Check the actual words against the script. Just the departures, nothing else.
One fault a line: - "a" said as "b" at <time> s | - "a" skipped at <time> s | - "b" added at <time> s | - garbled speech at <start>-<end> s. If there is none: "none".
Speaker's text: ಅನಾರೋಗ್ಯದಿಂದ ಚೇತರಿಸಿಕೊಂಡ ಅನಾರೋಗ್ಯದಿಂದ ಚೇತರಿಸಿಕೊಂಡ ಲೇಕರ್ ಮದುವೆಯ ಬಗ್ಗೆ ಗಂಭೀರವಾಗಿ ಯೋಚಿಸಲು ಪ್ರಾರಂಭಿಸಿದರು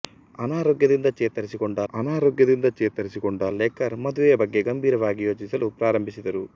none